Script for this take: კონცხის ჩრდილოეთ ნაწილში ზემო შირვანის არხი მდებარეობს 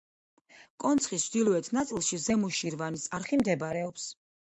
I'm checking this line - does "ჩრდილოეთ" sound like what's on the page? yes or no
yes